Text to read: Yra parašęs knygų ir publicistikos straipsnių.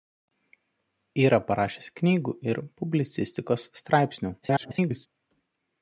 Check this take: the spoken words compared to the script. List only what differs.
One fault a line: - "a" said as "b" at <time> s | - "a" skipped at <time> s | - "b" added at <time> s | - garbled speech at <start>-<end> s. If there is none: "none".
- garbled speech at 4.4-5.1 s